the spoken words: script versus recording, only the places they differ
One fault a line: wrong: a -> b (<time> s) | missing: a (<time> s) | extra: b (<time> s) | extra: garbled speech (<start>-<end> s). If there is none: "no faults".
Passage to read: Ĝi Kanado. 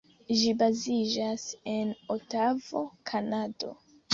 extra: baziĝas en Otavo (0.6 s)